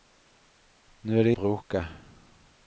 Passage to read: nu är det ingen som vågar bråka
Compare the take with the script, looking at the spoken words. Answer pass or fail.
fail